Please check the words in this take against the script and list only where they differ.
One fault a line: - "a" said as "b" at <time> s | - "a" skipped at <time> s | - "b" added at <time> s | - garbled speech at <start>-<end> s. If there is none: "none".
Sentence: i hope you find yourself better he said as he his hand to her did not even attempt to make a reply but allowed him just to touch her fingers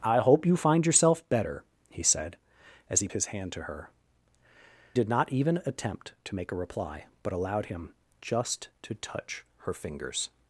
none